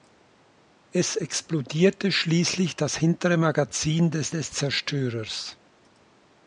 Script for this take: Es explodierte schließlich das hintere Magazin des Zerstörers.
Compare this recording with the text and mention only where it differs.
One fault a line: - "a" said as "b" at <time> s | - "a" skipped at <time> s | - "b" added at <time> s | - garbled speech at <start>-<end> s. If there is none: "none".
- "des" added at 4.3 s